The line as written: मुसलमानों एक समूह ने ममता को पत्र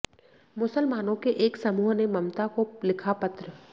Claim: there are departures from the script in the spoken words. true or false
true